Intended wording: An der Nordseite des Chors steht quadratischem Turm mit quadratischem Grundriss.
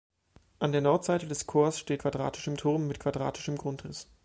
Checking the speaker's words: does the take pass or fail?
pass